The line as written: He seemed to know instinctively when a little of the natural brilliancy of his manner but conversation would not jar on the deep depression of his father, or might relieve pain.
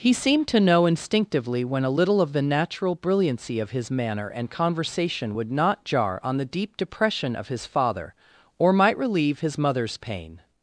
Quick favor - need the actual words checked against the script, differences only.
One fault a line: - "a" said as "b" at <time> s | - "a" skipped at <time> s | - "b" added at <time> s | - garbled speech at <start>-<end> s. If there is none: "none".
- "but" said as "and" at 4.3 s
- "his mother's" added at 9.4 s